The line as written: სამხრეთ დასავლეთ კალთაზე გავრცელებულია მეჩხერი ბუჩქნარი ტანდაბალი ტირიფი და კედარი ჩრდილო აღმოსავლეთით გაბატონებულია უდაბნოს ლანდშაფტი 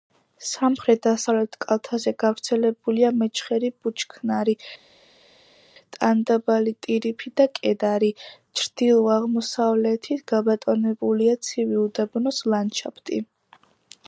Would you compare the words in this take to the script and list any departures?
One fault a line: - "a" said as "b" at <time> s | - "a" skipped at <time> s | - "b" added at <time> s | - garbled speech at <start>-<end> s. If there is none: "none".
- "ცივი" added at 11.5 s